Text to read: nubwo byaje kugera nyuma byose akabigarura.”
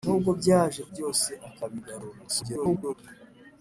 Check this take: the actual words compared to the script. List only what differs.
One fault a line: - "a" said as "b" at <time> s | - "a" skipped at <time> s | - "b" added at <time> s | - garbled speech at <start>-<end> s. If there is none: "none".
- "kugera nyuma" skipped at 0.8 s
- garbled speech at 2.3-2.9 s